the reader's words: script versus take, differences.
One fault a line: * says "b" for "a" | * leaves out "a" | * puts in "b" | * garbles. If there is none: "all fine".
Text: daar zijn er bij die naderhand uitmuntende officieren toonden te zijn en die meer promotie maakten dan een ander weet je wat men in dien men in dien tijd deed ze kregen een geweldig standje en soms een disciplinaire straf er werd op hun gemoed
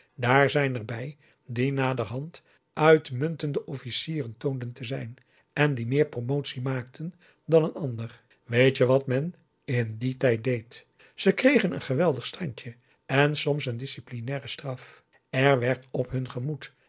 * leaves out "men in dien"